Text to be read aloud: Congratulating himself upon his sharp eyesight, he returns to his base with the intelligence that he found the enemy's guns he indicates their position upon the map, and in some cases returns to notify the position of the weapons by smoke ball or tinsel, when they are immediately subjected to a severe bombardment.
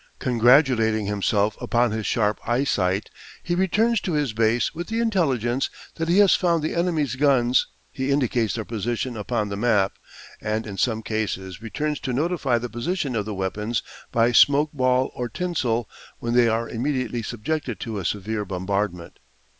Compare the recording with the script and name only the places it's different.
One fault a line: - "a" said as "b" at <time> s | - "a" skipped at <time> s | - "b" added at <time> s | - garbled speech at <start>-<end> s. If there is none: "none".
- "has" added at 6.2 s